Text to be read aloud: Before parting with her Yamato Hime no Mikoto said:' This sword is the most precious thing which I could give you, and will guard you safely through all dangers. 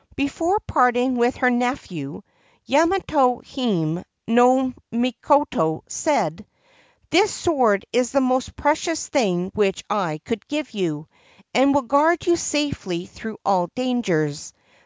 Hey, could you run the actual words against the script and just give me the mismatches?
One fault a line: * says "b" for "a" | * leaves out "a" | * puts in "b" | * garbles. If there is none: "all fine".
* puts in "nephew"